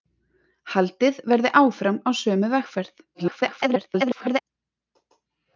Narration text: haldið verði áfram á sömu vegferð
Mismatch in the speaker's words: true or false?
true